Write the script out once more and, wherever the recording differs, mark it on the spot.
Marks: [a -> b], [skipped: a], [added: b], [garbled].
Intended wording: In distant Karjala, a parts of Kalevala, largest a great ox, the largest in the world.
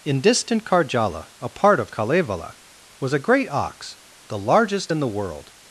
In distant Karjala, a [parts -> part] of Kalevala, [largest -> was] a great ox, the largest in the world.